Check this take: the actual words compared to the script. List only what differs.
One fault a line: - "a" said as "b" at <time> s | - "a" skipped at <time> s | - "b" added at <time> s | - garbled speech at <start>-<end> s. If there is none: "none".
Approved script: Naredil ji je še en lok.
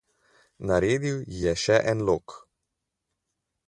none